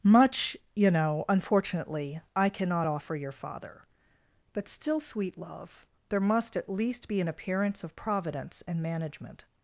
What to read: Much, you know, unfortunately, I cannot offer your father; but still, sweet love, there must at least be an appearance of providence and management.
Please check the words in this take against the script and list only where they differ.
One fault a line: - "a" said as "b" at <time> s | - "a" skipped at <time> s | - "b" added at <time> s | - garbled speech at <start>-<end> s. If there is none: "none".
none